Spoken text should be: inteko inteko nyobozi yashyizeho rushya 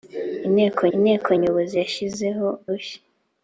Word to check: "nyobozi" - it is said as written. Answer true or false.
true